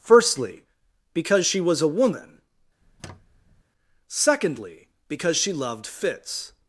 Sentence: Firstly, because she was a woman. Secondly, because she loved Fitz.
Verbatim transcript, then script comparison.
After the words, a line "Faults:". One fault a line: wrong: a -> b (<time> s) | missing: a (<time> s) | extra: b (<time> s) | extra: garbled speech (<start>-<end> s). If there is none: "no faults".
Firstly, because she was a woman. Secondly, because she loved Fitz.
Faults:
no faults